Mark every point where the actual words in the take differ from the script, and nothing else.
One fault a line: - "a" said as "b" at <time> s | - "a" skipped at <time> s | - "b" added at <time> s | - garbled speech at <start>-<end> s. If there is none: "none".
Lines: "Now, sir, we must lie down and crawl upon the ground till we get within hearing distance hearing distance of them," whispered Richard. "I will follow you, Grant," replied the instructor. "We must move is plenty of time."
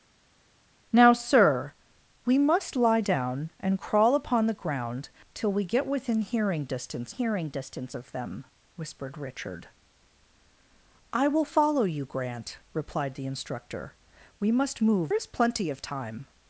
none